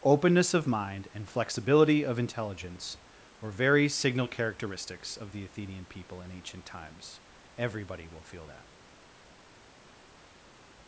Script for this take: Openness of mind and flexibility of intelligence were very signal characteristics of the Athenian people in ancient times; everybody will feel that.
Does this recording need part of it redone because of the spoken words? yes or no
no